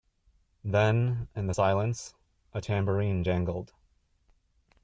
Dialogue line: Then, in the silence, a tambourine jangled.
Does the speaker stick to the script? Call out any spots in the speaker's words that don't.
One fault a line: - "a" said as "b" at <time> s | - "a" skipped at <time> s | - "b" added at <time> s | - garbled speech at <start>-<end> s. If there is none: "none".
none